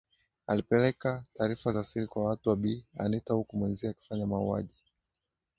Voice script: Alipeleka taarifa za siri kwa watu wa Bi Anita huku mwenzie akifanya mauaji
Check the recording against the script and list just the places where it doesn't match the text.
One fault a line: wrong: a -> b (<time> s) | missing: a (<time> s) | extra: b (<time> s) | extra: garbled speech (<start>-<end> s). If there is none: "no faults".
no faults